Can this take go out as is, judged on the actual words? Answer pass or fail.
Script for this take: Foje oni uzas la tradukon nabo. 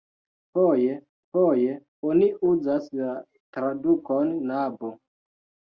fail